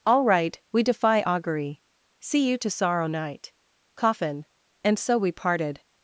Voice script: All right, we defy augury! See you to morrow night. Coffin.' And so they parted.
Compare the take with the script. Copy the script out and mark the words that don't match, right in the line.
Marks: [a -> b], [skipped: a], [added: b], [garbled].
All right, we defy augury! See you to [morrow -> sorrow] night. Coffin.' And so [they -> we] parted.